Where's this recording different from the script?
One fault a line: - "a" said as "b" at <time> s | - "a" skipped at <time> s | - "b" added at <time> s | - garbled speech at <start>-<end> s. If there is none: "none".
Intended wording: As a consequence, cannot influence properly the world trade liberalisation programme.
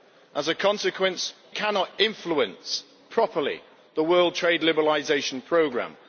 none